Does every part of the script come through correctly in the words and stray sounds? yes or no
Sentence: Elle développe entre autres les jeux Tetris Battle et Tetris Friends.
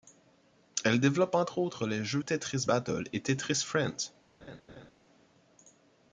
no